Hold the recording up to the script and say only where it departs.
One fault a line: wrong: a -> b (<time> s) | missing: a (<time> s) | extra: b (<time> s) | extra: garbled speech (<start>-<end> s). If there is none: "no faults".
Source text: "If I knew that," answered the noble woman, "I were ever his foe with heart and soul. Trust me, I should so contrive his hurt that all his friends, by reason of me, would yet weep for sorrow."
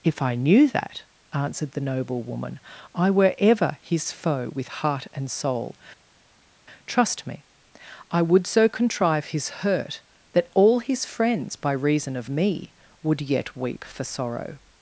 wrong: should -> would (8.2 s)